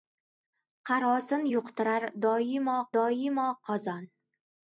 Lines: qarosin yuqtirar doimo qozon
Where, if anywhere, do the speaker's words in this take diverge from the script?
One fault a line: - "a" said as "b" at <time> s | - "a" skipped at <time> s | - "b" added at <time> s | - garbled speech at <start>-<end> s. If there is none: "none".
- "doimo" added at 3.0 s